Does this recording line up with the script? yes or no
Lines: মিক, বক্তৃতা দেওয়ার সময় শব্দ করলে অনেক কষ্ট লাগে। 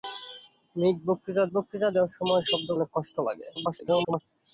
no